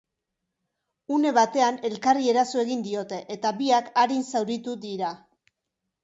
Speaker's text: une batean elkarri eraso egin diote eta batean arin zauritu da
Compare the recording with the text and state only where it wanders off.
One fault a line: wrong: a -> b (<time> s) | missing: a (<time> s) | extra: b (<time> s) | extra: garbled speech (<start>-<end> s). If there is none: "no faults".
wrong: batean -> biak (3.6 s)
wrong: da -> dira (4.9 s)